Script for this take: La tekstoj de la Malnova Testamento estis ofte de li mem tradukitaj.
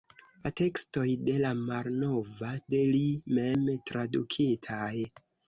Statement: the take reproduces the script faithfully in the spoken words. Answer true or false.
false